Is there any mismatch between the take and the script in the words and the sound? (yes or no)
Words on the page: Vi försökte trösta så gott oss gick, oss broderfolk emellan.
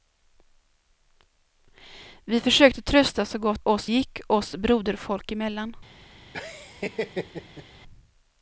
yes